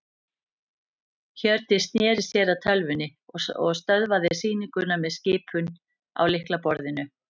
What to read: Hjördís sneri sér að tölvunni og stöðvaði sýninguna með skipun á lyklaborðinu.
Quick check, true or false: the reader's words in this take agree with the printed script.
true